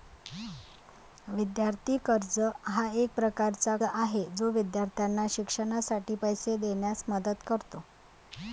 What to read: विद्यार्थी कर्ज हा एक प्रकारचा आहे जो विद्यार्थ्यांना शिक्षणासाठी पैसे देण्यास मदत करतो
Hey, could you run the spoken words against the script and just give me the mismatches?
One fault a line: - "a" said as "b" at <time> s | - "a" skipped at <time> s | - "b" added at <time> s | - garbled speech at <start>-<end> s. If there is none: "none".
none